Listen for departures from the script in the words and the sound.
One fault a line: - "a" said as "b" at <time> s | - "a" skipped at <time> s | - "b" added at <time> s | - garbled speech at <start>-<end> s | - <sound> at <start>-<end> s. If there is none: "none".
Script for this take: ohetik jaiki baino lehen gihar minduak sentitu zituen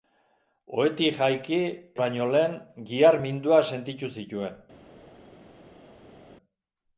none